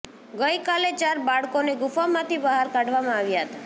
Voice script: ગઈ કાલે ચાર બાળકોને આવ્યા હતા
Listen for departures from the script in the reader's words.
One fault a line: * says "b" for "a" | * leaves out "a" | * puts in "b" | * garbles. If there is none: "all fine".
* puts in "ગુફામાંથી બહાર કાઢવામાં"